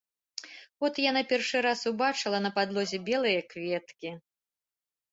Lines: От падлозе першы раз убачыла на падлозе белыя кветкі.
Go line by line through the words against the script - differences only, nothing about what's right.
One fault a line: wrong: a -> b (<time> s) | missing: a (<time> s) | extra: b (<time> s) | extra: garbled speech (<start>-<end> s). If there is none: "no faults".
wrong: падлозе -> яна (1.1 s)